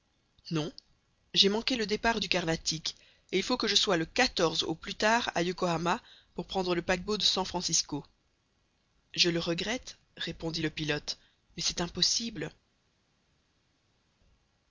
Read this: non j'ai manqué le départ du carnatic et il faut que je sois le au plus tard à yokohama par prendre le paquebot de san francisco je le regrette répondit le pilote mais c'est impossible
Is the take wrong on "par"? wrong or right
wrong